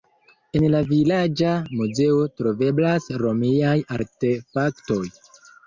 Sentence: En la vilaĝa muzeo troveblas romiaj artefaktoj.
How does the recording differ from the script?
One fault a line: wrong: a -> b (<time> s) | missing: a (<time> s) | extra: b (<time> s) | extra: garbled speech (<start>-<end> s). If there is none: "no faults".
no faults